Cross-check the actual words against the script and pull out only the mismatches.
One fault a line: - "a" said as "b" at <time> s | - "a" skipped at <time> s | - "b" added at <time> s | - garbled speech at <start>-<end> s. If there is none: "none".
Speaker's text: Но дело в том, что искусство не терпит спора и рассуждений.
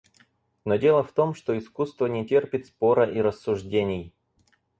none